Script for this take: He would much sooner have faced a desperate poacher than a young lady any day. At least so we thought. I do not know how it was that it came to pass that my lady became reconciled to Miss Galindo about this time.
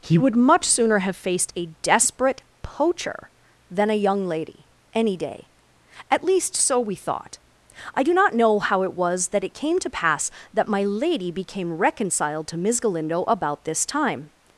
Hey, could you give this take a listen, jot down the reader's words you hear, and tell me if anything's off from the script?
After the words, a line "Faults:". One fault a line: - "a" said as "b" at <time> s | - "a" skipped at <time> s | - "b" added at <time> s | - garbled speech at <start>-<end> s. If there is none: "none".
He would much sooner have faced a desperate poacher than a young lady any day. At least so we thought. I do not know how it was that it came to pass that my lady became reconciled to Miss Galindo about this time.
Faults:
none